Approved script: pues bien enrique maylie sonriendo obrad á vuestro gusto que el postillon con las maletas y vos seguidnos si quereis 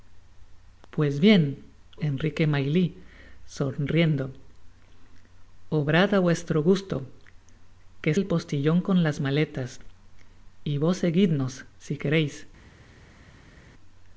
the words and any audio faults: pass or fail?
pass